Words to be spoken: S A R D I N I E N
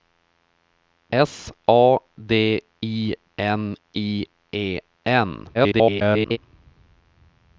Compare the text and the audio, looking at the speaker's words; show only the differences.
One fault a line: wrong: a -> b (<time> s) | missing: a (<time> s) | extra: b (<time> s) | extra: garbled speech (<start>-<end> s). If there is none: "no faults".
missing: R (2.0 s)
extra: garbled speech (5.5-6.4 s)